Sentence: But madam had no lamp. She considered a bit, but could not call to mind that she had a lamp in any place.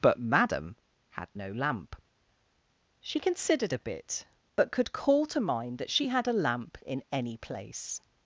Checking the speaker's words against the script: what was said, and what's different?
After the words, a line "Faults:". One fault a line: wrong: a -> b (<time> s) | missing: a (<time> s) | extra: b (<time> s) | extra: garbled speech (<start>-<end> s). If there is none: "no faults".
But madam had no lamp. She considered a bit, but could call to mind that she had a lamp in any place.
Faults:
missing: not (4.9 s)